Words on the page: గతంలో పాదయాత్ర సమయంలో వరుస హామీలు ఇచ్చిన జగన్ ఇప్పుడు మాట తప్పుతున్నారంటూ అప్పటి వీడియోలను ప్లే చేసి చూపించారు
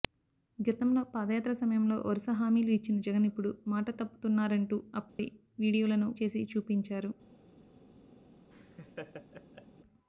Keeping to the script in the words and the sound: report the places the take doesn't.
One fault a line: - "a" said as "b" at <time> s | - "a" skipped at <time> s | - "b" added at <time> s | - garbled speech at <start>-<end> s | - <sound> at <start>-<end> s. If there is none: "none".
- dropout at 5.1-5.2 s
- "ప్లే" skipped at 6.1 s
- laugh at 8.5-9.7 s